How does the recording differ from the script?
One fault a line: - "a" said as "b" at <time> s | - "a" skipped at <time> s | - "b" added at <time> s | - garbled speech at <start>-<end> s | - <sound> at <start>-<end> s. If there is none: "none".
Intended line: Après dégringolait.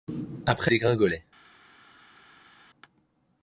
none